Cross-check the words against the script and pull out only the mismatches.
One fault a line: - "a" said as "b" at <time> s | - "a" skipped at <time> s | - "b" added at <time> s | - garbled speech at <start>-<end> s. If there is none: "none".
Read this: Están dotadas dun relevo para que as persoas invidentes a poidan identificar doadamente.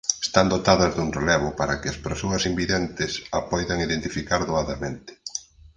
none